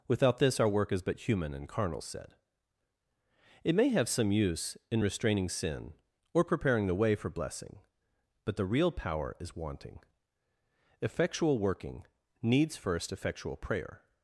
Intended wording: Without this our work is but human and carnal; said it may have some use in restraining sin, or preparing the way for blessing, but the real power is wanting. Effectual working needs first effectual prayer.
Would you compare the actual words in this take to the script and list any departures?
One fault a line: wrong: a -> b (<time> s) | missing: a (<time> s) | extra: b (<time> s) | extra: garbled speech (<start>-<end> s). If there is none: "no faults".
no faults